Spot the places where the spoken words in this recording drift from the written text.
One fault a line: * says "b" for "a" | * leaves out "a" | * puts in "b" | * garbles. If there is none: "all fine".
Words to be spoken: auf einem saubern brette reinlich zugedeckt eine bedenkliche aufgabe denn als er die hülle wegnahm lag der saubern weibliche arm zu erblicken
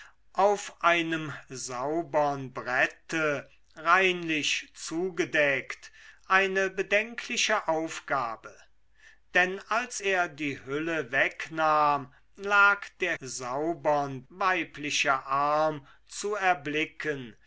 all fine